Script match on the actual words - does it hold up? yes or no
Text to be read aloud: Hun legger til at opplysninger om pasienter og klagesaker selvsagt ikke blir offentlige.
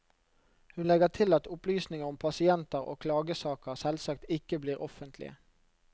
yes